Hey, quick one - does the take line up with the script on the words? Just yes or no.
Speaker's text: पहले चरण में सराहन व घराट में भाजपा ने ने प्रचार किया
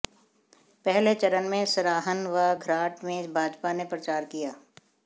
no